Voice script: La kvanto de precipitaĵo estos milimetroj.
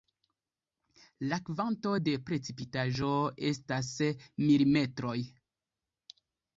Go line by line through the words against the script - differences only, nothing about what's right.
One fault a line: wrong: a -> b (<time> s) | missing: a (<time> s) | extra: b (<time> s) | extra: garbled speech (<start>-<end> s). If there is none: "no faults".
wrong: estos -> estas (3.5 s)